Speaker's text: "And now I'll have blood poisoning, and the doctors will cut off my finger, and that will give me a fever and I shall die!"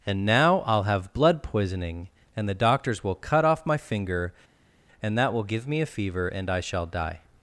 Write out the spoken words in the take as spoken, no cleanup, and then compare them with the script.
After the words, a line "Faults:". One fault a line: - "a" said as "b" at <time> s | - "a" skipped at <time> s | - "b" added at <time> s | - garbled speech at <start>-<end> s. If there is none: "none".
"And now I'll have blood poisoning, and the doctors will cut off my finger, and that will give me a fever and I shall die!"
Faults:
none